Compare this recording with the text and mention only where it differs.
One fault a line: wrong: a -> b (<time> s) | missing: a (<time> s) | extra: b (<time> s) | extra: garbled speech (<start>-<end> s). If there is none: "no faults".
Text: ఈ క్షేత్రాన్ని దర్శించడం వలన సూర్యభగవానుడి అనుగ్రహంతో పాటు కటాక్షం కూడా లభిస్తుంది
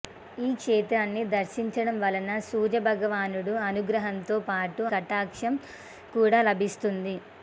no faults